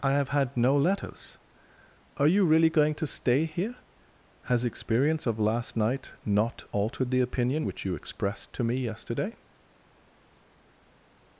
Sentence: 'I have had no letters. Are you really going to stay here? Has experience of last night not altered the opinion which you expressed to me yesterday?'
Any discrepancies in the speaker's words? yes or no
no